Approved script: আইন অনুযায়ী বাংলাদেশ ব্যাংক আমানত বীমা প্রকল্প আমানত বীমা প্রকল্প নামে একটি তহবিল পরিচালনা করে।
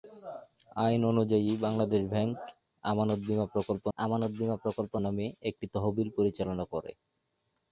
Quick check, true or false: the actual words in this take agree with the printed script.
true